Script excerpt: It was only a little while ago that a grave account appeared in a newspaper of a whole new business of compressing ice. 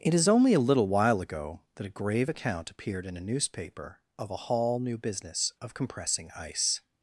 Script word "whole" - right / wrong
wrong